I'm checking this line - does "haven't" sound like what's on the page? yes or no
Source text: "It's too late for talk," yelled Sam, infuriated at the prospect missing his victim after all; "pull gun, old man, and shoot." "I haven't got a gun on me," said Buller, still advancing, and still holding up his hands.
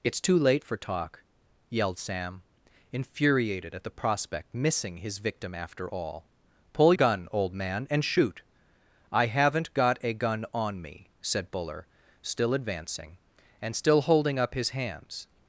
yes